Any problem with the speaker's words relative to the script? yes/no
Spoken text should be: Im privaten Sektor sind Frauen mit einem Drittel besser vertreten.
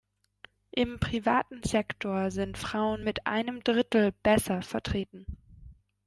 no